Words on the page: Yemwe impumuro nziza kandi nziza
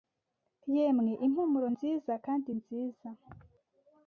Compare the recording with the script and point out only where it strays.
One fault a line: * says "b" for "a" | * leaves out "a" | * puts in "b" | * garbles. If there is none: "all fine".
all fine